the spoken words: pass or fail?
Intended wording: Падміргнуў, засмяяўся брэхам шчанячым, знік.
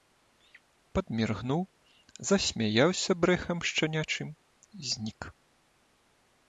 pass